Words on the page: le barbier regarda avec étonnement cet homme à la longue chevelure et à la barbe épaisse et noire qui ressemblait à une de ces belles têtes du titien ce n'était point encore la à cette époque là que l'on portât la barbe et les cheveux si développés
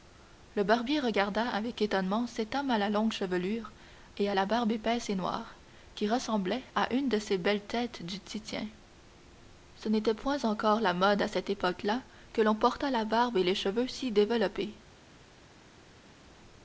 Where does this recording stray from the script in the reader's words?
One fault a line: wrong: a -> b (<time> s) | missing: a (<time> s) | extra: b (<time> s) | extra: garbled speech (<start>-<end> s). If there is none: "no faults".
extra: mode (10.9 s)